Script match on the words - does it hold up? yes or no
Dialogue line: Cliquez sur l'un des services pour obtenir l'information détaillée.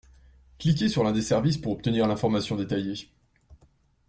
yes